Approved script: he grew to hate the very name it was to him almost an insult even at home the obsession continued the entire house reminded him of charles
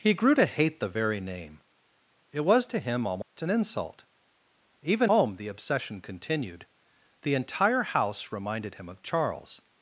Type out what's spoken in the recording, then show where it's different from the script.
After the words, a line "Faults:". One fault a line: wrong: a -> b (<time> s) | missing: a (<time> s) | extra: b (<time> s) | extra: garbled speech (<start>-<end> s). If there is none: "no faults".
he grew to hate the very name it was to him almost an insult even home the obsession continued the entire house reminded him of charles
Faults:
missing: at (5.1 s)